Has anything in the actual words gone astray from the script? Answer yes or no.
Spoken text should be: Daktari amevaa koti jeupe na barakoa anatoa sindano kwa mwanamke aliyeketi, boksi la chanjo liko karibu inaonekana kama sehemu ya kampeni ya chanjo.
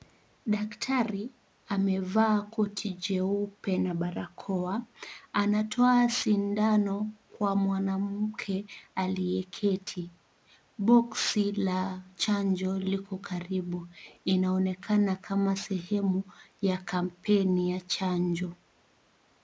no